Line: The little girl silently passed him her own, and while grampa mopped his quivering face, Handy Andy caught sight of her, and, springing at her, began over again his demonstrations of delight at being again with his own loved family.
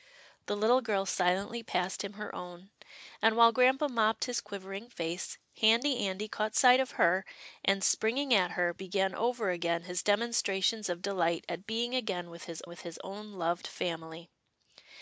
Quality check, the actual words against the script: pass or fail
fail